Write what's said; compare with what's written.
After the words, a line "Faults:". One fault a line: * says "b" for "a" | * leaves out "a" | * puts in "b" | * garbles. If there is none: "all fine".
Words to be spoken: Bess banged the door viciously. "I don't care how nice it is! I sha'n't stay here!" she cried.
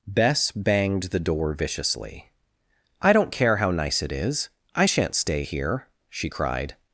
Bess banged the door viciously. "I don't care how nice it is! I sha'n't stay here!" she cried.
Faults:
all fine